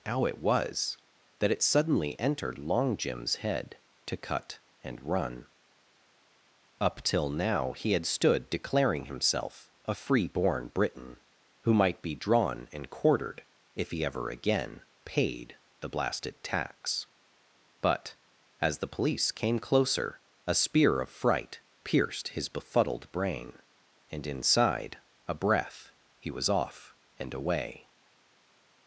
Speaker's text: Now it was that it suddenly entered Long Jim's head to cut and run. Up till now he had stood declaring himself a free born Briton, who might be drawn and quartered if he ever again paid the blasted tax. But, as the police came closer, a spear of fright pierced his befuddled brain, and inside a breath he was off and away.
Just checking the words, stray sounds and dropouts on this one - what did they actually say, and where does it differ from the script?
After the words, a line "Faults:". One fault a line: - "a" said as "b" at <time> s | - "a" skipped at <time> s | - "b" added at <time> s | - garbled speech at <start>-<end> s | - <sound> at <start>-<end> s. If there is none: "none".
How it was that it suddenly entered Long Jim's head to cut and run. Up till now he had stood declaring himself a free born Briton, who might be drawn and quartered if he ever again paid the blasted tax. But, as the police came closer, a spear of fright pierced his befuddled brain, and inside a breath he was off and away.
Faults:
- "Now" said as "How" at 0.1 s